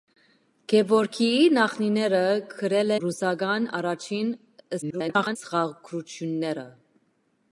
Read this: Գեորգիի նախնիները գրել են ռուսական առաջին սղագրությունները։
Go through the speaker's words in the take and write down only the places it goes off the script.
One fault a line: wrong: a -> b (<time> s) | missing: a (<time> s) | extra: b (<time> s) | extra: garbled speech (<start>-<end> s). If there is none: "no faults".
missing: են (3.0 s)
extra: garbled speech (4.8-5.4 s)